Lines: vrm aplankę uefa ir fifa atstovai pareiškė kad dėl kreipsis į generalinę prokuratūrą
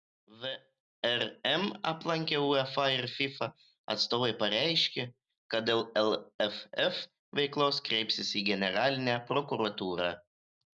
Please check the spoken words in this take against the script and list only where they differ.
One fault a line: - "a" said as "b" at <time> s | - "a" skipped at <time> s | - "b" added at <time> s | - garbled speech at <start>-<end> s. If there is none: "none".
- "lff veiklos" added at 6.0 s